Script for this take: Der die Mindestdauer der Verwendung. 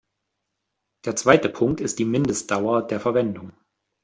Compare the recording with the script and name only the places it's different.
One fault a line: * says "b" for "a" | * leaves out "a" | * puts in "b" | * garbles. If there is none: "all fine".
* puts in "zweite Punkt ist"